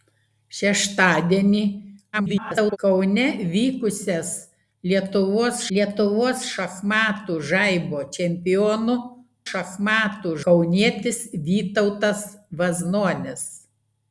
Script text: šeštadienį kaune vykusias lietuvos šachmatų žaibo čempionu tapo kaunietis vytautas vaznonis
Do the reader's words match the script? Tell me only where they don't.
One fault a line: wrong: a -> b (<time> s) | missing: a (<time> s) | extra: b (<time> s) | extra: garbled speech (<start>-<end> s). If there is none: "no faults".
extra: garbled speech (2.1-2.8 s)
extra: lietuvos (5.8 s)
wrong: tapo -> šachmatų (9.5 s)